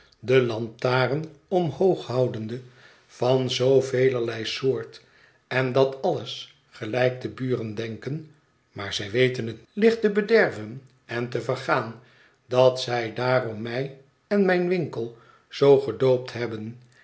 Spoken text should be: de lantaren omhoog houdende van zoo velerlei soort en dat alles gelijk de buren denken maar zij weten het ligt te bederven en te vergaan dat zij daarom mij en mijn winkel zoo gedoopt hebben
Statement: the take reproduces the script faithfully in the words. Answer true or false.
true